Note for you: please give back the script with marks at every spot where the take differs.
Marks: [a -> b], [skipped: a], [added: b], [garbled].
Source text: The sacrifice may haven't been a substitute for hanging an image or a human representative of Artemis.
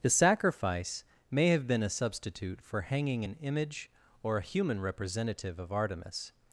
The sacrifice may [haven't -> have] been a substitute for hanging an image or a human representative of Artemis.